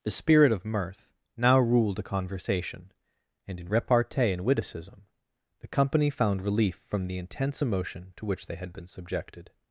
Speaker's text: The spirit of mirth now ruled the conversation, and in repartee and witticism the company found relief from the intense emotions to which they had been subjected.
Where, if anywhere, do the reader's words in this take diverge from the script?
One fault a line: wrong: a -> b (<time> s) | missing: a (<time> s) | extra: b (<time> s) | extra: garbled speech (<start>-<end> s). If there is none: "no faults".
wrong: the -> a (2.0 s)
wrong: emotions -> emotion (7.6 s)